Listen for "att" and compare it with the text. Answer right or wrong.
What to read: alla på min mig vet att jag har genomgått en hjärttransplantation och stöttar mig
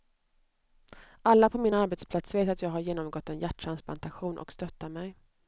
right